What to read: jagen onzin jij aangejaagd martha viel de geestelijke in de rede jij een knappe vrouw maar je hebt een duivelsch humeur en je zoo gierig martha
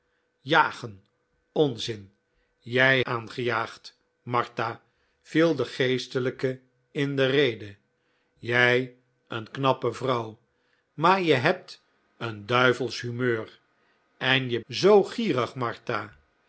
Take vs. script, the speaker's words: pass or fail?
pass